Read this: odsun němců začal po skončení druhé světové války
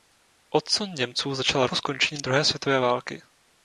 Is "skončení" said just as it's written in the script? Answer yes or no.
yes